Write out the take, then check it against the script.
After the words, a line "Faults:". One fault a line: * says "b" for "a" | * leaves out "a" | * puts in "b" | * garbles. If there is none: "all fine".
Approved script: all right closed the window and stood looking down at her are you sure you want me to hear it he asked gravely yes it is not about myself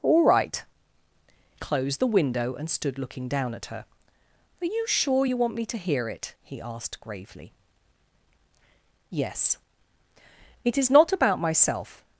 all right closed the window and stood looking down at her are you sure you want me to hear it he asked gravely yes it is not about myself
Faults:
all fine